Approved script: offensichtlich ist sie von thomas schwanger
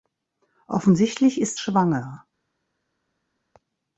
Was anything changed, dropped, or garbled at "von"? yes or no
yes